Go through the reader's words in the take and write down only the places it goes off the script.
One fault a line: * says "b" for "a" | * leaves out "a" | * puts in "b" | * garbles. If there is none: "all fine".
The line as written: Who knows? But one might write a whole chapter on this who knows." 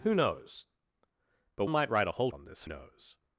* leaves out "one"
* leaves out "chapter"
* leaves out "who"